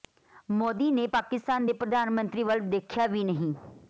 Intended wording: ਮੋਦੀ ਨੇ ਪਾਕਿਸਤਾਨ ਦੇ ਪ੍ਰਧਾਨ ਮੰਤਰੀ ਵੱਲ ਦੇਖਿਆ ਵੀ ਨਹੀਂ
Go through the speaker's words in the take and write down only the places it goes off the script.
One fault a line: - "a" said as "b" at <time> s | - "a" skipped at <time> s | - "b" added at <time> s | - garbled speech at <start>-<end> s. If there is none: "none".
none